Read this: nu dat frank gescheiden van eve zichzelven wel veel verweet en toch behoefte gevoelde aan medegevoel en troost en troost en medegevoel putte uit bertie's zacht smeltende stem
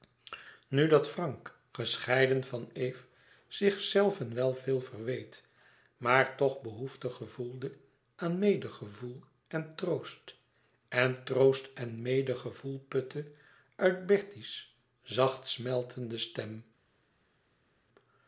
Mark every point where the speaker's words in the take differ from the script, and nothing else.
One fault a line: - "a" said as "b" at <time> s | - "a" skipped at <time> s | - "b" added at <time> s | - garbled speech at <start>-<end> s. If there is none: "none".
- "en" said as "maar" at 6.0 s